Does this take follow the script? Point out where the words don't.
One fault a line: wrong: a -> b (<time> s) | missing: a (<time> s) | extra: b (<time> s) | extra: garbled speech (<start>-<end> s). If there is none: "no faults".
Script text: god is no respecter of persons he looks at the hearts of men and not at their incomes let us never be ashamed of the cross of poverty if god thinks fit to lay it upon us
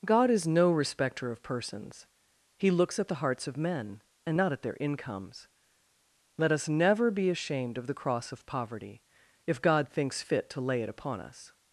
no faults